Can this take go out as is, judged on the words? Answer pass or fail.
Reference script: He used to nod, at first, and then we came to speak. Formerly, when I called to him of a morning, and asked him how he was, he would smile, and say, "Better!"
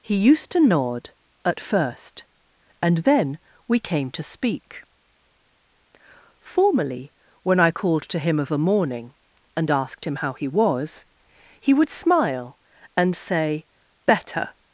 pass